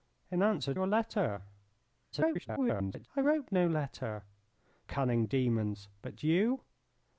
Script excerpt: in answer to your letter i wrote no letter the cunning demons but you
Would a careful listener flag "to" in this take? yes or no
yes